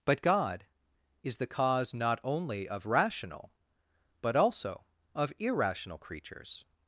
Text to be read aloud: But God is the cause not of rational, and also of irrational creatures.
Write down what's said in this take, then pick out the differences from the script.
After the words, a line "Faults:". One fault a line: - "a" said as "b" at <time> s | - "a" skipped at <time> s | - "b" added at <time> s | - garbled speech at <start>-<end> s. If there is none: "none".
But God is the cause not only of rational, but also of irrational creatures.
Faults:
- "only" added at 2.2 s
- "and" said as "but" at 4.2 s